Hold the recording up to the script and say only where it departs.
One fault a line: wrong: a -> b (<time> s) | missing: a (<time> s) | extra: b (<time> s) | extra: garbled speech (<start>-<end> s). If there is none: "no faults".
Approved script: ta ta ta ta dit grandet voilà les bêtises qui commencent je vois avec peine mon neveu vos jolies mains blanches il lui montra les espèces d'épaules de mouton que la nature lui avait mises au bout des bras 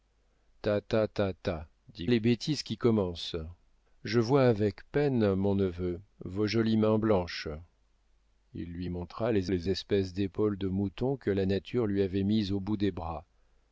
missing: grandet voilà (2.1 s)
extra: les (9.5 s)